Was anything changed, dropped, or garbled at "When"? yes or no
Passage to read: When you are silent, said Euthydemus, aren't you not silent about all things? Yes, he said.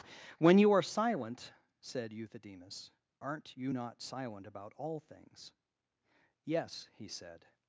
no